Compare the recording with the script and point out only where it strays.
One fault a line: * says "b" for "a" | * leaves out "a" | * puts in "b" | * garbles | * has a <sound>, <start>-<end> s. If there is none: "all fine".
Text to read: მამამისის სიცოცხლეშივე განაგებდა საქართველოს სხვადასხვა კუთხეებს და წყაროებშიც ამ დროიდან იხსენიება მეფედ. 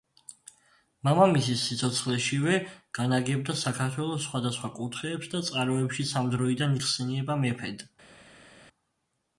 all fine